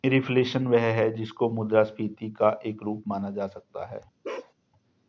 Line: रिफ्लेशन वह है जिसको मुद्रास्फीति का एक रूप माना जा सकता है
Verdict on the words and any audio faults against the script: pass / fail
fail